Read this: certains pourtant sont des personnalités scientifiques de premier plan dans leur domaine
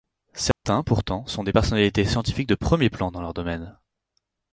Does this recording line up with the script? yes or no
yes